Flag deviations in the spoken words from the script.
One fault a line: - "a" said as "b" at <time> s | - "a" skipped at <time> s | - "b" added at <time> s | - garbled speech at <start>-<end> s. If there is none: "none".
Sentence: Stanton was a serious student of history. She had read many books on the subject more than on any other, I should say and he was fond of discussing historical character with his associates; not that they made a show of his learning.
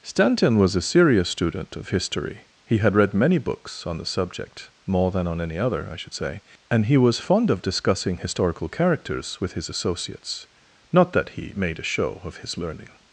- "She" said as "He" at 2.6 s
- "character" said as "characters" at 8.7 s
- "they" said as "he" at 11.3 s